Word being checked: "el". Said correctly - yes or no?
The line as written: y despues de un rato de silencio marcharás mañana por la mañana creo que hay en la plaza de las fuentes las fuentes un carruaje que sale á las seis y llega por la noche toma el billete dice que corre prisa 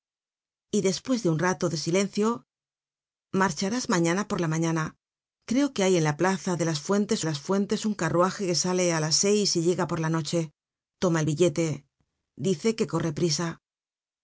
yes